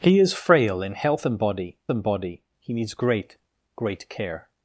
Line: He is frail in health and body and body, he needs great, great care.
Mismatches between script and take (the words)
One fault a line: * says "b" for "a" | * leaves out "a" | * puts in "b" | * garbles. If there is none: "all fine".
all fine